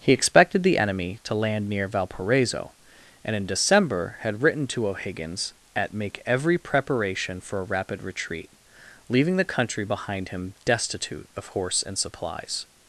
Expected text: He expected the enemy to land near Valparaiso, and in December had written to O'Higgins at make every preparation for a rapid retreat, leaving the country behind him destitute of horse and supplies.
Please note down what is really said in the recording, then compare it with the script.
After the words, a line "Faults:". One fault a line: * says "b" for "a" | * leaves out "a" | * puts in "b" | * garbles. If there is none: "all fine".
He expected the enemy to land near Valparaiso, and in December had written to O'Higgins at make every preparation for a rapid retreat, leaving the country behind him destitute of horse and supplies.
Faults:
all fine